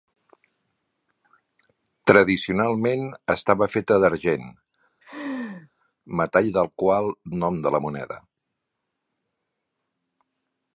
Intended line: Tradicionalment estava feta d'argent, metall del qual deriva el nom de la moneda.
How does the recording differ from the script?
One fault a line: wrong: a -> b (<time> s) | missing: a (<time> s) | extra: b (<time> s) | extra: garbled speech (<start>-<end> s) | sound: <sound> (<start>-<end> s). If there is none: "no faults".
sound: laugh (5.0-5.7 s)
missing: deriva (7.1 s)